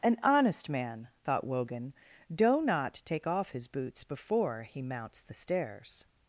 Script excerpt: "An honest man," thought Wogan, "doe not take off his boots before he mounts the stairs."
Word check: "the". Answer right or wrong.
right